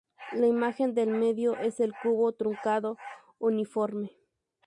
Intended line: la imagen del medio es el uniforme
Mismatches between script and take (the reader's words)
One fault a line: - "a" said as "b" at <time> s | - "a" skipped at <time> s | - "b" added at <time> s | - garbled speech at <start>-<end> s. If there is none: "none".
- "cubo truncado" added at 2.0 s